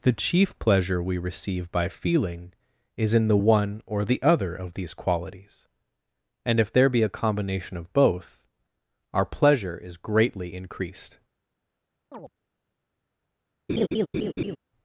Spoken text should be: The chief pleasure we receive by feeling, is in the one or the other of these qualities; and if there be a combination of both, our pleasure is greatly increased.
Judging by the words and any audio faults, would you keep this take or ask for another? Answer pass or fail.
fail